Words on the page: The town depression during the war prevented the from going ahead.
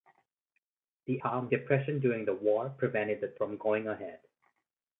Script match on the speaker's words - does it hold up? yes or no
yes